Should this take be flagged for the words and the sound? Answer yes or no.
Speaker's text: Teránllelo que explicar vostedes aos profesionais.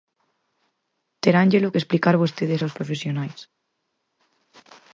no